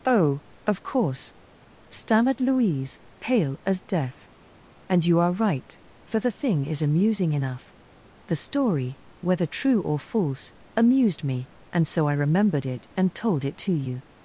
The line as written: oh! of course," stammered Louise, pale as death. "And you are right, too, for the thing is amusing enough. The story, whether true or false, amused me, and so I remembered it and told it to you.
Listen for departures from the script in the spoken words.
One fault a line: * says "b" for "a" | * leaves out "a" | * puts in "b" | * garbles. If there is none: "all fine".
* leaves out "too"